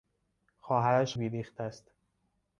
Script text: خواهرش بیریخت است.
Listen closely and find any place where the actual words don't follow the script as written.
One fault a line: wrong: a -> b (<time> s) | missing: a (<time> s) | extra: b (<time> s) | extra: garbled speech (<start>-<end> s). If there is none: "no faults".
no faults